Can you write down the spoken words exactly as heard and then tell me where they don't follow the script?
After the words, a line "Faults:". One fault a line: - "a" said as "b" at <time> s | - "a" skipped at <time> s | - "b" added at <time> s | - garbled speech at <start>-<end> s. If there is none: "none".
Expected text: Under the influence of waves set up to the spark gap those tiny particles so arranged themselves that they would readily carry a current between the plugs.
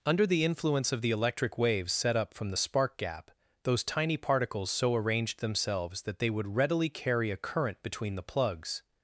Under the influence of the electric waves set up from the spark gap those tiny particles so arranged themselves that they would readily carry a current between the plugs.
Faults:
- "the electric" added at 1.0 s
- "to" said as "from" at 2.3 s